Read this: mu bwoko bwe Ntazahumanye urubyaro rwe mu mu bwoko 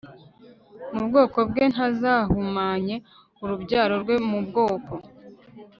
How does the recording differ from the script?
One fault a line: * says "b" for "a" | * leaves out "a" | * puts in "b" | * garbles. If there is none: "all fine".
* leaves out "mu"